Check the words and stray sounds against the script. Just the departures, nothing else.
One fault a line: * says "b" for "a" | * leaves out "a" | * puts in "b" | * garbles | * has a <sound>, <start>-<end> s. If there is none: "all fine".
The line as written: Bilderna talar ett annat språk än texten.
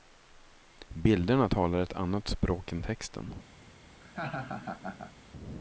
* has a laugh, 4.0-5.1 s